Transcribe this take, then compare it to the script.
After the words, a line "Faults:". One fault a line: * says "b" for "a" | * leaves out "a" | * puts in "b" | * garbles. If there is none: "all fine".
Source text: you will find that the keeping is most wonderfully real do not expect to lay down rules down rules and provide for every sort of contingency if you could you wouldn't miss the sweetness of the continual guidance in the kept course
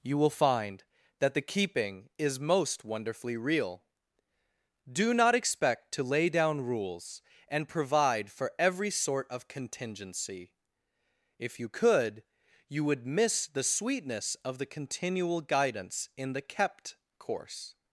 you will find that the keeping is most wonderfully real do not expect to lay down rules and provide for every sort of contingency if you could you would miss the sweetness of the continual guidance in the kept course
Faults:
* leaves out "down rules"
* says "would" for "wouldn't"